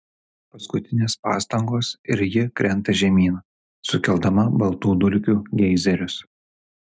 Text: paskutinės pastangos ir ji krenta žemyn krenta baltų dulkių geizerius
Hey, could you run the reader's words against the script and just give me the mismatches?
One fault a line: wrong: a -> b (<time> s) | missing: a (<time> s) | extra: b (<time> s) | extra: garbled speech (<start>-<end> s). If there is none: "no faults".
wrong: krenta -> sukeldama (3.9 s)